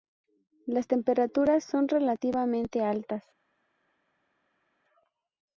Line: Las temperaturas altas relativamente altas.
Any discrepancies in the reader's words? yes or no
yes